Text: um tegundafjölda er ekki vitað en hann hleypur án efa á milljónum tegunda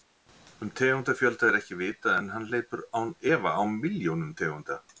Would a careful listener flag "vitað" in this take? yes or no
no